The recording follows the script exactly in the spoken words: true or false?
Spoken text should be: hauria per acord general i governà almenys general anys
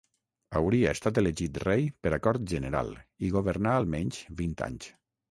false